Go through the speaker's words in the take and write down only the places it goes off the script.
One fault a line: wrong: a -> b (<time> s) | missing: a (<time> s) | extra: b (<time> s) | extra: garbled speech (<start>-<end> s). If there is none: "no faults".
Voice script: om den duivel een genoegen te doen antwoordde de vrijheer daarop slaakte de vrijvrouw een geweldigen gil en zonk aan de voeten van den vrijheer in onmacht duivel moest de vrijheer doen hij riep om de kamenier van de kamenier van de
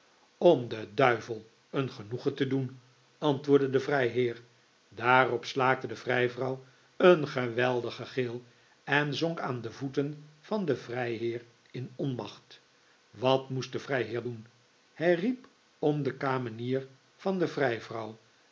wrong: duivel -> wat (13.1 s)
missing: kamenier van de (17.5 s)